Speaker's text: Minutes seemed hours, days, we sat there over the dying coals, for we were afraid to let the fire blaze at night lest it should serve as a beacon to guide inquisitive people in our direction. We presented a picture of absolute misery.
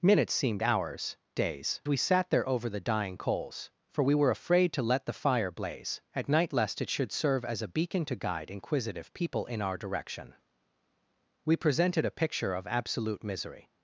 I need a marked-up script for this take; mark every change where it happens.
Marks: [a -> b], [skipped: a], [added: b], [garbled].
Minutes seemed hours, days, we sat there over the dying coals, for we were afraid to let the fire blaze at night lest it should serve as a beacon to guide inquisitive people in our direction. We presented a picture of absolute misery.